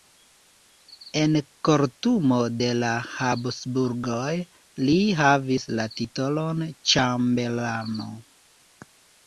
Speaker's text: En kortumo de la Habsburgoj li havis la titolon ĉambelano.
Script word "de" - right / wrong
right